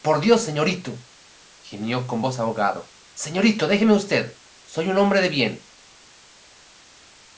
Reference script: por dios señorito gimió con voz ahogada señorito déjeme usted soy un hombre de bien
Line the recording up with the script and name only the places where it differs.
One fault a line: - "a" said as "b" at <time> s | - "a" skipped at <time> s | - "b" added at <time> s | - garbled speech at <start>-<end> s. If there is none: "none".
none